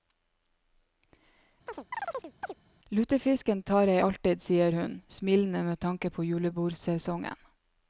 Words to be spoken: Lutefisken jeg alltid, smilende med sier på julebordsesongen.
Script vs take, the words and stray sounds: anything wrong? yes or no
yes